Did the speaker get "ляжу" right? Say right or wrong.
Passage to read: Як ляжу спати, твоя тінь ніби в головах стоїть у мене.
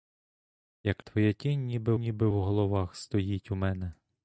wrong